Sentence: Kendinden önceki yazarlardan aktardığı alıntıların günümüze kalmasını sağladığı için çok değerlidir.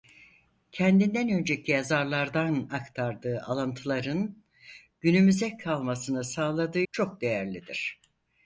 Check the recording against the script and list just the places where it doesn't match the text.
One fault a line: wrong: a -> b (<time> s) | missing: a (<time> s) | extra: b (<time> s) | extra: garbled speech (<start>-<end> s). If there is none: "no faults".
missing: için (6.8 s)